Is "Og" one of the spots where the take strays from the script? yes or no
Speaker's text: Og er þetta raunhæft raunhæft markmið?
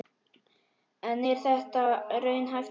yes